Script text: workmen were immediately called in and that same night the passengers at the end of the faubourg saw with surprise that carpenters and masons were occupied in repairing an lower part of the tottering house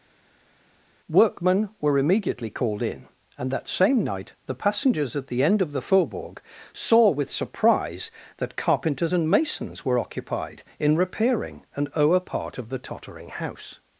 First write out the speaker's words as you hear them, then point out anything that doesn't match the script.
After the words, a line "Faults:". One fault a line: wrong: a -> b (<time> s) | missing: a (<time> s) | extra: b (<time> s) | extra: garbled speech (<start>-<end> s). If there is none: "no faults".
workmen were immediately called in and that same night the passengers at the end of the faubourg saw with surprise that carpenters and masons were occupied in repairing an lower part of the tottering house
Faults:
no faults